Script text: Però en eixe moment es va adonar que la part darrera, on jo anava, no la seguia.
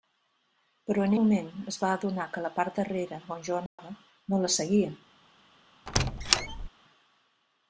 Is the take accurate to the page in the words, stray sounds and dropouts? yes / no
no